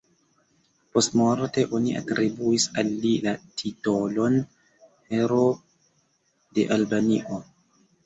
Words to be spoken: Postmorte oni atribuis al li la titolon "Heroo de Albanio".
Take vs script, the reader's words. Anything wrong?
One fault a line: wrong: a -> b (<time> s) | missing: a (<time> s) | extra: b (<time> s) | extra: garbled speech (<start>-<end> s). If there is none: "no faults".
no faults